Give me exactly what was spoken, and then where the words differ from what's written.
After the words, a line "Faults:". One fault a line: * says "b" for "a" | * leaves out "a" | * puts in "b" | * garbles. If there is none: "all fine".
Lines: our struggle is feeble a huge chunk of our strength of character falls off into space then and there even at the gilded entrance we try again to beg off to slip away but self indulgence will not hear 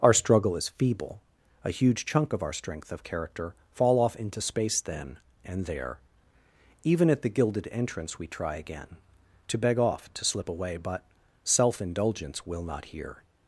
our struggle is feeble a huge chunk of our strength of character fall off into space then and there even at the gilded entrance we try again to beg off to slip away but self indulgence will not hear
Faults:
* says "fall" for "falls"